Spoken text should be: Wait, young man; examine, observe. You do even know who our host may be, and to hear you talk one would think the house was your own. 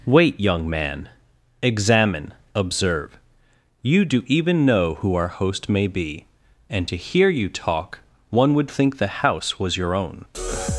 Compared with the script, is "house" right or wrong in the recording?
right